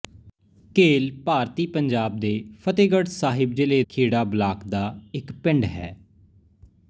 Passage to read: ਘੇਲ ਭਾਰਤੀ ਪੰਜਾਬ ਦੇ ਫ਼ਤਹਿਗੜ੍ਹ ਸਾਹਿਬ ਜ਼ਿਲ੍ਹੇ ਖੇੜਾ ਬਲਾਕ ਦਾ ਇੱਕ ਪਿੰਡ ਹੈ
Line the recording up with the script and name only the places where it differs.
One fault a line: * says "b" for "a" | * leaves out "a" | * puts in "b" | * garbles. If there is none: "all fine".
all fine